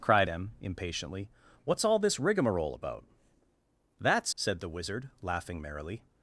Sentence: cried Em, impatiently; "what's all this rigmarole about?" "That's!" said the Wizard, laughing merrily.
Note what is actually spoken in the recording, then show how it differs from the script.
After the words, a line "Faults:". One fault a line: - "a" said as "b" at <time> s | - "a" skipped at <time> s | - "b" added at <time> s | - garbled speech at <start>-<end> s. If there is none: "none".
cried Em, impatiently; "what's all this rigmarole about?" "That's!" said the Wizard, laughing merrily.
Faults:
none